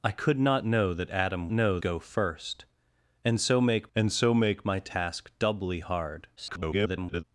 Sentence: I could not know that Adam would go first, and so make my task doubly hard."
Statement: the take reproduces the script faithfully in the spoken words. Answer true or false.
false